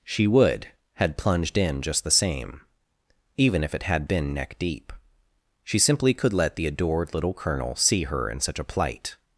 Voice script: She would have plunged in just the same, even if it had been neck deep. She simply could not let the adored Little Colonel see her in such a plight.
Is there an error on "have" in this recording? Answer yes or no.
yes